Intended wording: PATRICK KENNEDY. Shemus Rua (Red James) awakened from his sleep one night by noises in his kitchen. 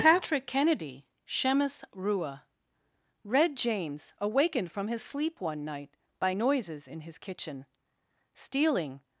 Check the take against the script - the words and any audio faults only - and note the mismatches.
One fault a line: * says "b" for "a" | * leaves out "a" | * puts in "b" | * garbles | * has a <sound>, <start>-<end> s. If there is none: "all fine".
* puts in "Stealing"